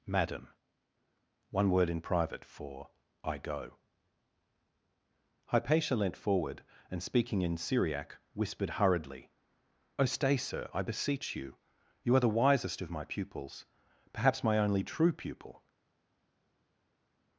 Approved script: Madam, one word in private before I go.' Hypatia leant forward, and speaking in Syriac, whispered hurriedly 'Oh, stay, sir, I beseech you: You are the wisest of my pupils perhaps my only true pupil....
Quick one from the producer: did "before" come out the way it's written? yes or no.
no